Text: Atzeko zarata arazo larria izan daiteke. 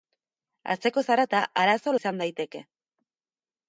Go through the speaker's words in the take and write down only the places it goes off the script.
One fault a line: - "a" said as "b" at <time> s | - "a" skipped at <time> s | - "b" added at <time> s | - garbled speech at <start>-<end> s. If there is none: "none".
- "larria" skipped at 2.0 s